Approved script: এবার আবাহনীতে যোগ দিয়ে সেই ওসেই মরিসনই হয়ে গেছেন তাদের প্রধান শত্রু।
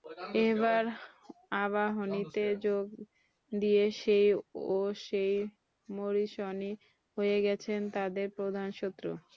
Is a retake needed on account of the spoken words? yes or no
no